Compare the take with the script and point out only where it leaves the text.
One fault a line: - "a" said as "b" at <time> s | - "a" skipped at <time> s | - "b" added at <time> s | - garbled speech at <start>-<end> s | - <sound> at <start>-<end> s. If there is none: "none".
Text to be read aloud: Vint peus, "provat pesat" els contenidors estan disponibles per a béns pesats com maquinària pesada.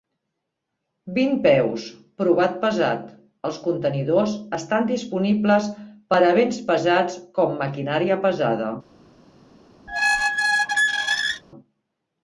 - squeak at 9.9-11.4 s